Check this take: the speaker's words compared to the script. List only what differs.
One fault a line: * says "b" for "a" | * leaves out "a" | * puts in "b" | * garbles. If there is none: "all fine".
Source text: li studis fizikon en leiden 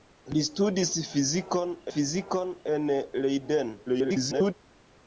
* puts in "fizikon"
* garbles